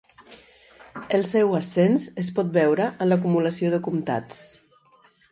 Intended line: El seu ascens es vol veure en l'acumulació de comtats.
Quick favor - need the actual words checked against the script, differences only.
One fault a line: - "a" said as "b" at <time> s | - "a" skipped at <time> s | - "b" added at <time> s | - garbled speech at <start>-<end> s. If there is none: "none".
- "vol" said as "pot" at 2.4 s